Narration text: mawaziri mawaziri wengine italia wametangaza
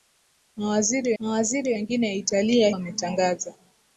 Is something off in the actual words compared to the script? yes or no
no